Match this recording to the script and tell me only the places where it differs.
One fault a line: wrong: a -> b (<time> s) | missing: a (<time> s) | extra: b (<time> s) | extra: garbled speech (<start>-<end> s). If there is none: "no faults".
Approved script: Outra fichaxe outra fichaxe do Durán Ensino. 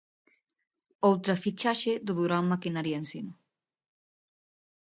missing: outra fichaxe (1.9 s)
extra: Maquinaria (2.5 s)